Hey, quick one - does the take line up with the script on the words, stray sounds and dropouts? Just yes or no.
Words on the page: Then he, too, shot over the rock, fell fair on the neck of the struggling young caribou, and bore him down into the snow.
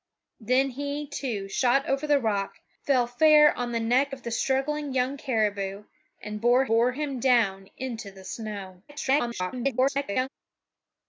no